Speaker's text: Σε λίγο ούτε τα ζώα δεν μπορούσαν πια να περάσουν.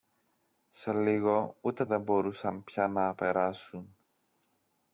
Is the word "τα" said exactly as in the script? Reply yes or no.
no